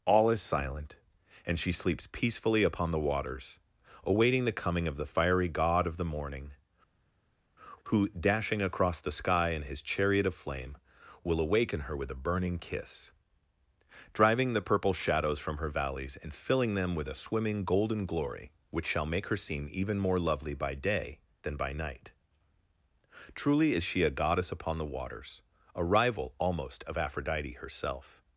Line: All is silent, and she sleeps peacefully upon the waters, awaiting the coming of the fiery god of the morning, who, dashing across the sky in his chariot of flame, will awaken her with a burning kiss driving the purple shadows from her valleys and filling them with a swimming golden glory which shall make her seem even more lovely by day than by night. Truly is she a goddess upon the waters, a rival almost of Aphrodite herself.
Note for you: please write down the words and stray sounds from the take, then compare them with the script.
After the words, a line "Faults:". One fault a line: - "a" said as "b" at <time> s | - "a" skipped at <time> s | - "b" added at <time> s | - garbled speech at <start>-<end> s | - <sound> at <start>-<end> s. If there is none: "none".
All is silent, and she sleeps peacefully upon the waters, awaiting the coming of the fiery god of the morning, who, dashing across the sky in his chariot of flame, will awaken her with a burning kiss driving the purple shadows from her valleys and filling them with a swimming golden glory which shall make her seem even more lovely by day than by night. Truly is she a goddess upon the waters, a rival almost of Aphrodite herself.
Faults:
none